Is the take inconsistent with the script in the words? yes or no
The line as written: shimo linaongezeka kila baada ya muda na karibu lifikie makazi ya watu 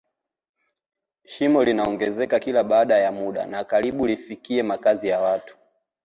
no